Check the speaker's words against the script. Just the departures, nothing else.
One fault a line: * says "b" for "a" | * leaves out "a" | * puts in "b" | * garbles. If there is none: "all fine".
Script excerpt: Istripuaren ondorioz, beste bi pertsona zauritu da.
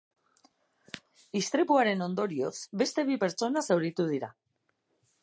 * says "dira" for "da"